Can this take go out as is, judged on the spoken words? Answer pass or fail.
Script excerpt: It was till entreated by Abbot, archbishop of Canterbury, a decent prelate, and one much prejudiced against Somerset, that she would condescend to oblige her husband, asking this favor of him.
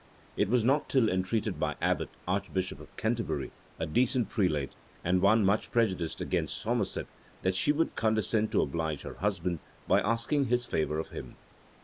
fail